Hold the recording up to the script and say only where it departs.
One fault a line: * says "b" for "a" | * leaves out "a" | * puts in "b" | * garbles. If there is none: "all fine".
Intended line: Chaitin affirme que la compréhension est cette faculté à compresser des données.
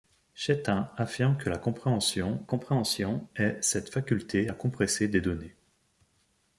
* puts in "compréhension"